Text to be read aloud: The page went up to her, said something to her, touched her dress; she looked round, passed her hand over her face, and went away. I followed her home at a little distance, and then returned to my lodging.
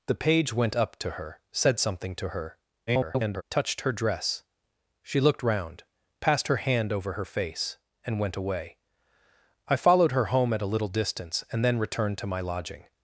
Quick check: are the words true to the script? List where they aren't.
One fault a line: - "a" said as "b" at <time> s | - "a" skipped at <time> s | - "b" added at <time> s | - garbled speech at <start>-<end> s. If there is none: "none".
- garbled speech at 2.9-3.4 s